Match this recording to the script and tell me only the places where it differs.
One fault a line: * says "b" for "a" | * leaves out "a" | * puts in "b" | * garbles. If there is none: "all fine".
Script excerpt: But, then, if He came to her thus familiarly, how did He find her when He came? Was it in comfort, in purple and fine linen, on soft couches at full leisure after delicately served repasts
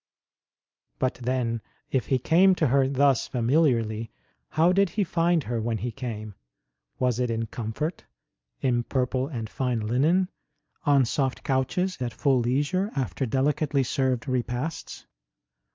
all fine